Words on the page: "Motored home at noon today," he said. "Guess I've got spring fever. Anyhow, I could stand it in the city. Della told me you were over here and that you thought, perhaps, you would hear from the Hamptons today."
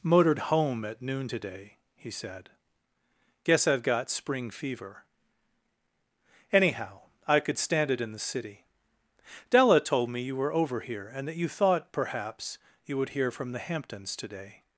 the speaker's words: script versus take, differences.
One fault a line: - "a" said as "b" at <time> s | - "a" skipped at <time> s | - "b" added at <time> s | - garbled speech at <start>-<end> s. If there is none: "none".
none